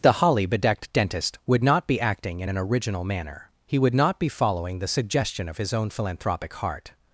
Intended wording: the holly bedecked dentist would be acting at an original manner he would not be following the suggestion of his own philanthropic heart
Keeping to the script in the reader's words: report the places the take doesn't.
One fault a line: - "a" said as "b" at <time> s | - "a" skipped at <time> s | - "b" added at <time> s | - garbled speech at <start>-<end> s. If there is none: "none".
- "not" added at 1.6 s
- "at" said as "in" at 2.4 s